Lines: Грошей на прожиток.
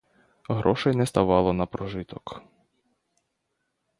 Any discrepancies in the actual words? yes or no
yes